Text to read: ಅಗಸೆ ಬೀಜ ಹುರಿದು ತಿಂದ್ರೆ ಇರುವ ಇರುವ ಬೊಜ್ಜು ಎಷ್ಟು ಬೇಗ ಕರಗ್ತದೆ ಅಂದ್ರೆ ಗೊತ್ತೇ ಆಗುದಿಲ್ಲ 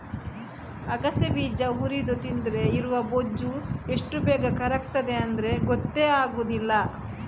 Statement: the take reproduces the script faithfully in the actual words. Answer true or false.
false